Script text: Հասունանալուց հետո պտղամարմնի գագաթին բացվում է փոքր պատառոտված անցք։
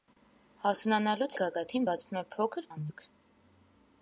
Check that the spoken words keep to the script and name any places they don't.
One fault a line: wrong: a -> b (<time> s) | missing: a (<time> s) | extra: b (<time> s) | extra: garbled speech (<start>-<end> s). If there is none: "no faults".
missing: հետո պտղամարմնի (1.4 s)
missing: պատառոտված (2.7 s)